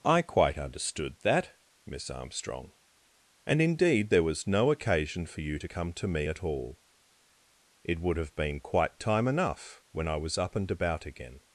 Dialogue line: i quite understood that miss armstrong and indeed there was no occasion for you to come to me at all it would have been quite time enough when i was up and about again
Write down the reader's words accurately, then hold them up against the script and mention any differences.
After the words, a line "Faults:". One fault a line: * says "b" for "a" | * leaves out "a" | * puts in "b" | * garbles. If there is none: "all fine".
i quite understood that miss armstrong and indeed there was no occasion for you to come to me at all it would have been quite time enough when i was up and about again
Faults:
all fine